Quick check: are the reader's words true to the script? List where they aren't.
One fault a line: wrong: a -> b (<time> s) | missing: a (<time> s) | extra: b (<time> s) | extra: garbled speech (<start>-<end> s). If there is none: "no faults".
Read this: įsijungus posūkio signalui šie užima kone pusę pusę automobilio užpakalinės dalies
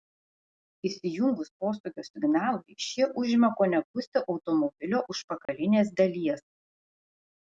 missing: pusę (4.2 s)